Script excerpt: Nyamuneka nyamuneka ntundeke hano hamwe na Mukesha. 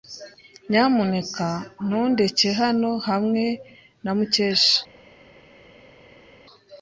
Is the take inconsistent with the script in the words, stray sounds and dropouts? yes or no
yes